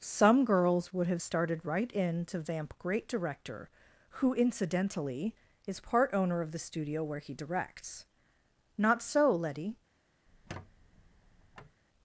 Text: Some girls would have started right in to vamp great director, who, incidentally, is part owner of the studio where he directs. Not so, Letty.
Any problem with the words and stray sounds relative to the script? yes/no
yes